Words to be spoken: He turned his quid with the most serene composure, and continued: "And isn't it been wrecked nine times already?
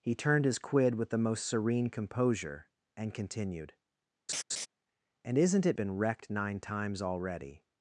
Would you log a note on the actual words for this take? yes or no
no